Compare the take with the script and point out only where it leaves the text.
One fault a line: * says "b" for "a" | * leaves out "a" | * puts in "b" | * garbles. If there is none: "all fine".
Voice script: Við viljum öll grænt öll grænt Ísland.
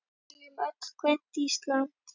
* leaves out "öll grænt"